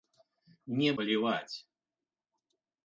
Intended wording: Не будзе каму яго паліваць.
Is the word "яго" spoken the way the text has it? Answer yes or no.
no